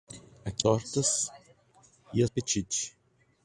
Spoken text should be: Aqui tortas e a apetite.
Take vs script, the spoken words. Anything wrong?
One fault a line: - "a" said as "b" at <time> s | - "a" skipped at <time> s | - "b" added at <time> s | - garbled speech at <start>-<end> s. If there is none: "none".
none